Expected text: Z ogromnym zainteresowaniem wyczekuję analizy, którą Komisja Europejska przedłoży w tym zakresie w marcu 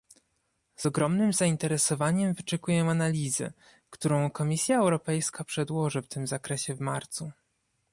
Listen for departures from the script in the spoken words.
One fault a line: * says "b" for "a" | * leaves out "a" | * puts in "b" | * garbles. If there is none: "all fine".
all fine